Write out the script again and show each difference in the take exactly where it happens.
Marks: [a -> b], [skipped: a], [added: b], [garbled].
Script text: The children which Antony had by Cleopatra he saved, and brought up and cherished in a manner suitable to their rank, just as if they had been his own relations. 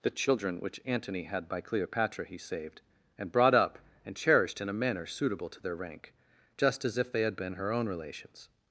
The children which Antony had by Cleopatra he saved, and brought up and cherished in a manner suitable to their rank, just as if they had been [his -> her] own relations.